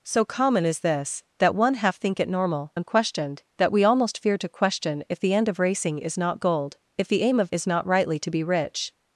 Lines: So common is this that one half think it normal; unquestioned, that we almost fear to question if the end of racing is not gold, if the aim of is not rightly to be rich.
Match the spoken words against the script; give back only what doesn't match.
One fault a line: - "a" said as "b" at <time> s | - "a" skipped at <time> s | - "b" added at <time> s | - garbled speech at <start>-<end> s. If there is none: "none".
none